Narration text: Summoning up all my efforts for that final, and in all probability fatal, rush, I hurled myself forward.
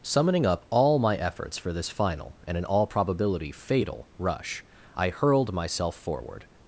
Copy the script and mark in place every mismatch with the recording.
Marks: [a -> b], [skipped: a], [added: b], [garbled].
Summoning up all my efforts for [that -> this] final, and in all probability fatal, rush, I hurled myself forward.